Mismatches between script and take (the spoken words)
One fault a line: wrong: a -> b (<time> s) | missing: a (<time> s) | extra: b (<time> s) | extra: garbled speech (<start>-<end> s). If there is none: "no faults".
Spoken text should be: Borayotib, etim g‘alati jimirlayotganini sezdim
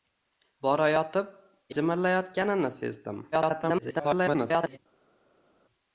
missing: etim g‘alati (1.3 s)
extra: garbled speech (3.3-4.8 s)